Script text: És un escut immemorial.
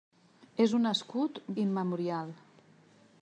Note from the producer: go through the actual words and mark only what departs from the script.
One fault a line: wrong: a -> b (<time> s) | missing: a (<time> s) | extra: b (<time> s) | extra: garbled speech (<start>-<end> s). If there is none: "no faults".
no faults